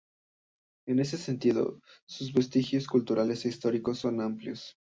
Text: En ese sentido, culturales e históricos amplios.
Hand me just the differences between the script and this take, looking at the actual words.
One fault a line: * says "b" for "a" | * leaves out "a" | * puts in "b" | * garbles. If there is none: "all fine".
* puts in "sus vestigios"
* puts in "son"